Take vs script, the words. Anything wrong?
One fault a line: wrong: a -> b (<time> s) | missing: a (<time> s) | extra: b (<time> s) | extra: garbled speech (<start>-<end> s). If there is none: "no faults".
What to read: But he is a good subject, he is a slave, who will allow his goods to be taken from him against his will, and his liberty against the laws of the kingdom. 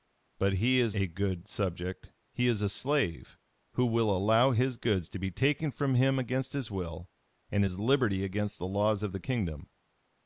no faults